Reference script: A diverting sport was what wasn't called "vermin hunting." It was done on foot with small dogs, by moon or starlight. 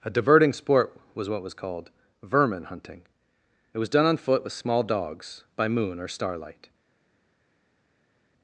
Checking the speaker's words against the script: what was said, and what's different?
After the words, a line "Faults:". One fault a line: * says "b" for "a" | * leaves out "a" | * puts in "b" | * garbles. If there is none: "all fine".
A diverting sport was what was called "vermin hunting." It was done on foot with small dogs, by moon or starlight.
Faults:
* says "was" for "wasn't"